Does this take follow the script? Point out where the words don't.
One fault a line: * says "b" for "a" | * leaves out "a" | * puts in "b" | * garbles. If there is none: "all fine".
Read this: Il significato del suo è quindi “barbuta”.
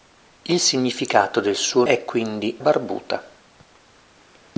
all fine